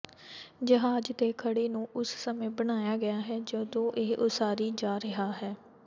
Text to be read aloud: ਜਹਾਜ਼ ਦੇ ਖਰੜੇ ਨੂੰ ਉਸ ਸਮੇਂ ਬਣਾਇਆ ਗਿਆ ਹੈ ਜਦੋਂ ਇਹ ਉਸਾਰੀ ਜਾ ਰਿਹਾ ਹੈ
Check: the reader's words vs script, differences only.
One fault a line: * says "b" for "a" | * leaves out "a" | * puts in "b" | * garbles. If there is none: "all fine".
all fine